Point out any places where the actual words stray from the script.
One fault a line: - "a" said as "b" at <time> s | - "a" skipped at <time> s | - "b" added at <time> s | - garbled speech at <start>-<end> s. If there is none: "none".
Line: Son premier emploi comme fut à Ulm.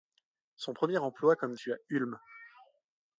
none